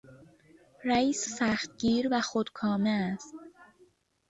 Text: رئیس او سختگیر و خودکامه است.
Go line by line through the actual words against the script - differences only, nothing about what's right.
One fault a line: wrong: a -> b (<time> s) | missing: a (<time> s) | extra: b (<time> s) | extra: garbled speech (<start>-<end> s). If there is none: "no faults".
missing: او (1.3 s)